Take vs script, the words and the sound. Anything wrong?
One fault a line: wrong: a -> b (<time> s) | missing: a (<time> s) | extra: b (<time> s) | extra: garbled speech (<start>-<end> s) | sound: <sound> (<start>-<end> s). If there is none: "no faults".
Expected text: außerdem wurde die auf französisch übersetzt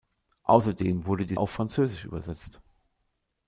no faults